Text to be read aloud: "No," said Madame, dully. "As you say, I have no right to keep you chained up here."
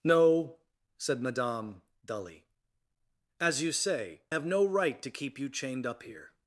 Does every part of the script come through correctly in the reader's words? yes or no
no